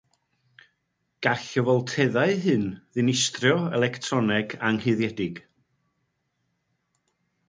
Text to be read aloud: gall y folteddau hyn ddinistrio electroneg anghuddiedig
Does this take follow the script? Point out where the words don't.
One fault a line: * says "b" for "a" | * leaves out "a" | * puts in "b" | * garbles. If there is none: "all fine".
all fine